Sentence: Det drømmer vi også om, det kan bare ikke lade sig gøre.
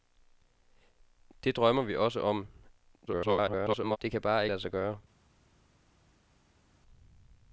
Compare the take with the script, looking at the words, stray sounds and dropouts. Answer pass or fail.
fail